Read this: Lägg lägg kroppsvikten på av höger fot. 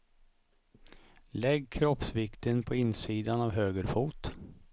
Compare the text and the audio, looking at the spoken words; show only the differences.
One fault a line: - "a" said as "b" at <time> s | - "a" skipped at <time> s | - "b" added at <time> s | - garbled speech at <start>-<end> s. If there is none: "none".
- "lägg" skipped at 1.7 s
- "insidan" added at 2.8 s